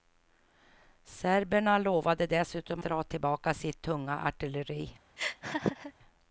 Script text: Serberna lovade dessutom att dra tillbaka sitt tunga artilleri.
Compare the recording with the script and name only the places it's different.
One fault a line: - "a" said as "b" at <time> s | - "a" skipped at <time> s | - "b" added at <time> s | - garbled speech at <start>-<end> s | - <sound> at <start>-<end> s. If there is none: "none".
- "att" skipped at 2.8 s
- laugh at 5.2-5.9 s